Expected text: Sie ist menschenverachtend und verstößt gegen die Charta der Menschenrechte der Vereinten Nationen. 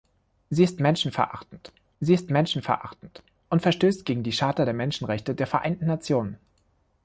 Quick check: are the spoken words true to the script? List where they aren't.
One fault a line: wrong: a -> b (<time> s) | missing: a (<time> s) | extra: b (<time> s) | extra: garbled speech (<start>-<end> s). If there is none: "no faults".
extra: sie ist menschenverachtend (2.0 s)